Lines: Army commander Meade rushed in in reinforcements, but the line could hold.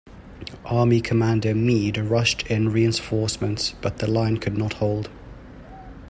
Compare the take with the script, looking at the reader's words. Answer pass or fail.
fail